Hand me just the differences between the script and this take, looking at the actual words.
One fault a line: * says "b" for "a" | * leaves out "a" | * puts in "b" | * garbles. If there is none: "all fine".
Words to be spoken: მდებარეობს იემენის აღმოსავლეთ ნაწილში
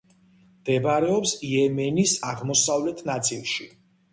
all fine